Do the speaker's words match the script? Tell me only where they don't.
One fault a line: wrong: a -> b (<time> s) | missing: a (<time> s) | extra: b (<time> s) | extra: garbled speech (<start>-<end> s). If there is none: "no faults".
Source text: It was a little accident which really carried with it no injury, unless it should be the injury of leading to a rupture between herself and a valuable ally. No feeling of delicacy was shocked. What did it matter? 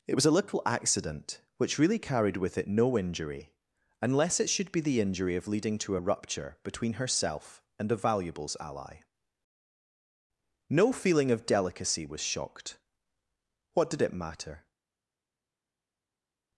wrong: valuable -> valuables (8.0 s)